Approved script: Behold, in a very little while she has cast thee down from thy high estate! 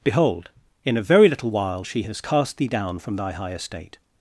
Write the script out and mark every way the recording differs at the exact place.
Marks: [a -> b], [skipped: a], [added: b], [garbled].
Behold, in a very little while she has cast thee down from thy high estate!